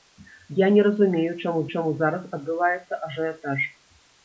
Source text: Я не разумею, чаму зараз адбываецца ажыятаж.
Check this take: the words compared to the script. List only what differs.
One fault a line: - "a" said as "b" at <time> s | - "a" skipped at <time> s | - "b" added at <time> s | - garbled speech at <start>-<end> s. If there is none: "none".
- "чаму" added at 1.7 s